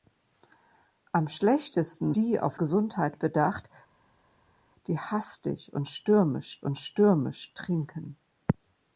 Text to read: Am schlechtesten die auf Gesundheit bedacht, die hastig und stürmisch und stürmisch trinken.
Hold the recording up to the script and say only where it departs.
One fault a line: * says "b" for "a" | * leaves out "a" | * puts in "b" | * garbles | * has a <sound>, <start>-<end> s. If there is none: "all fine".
all fine